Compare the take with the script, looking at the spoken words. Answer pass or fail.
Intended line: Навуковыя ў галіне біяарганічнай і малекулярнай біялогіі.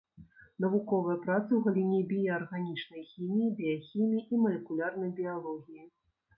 fail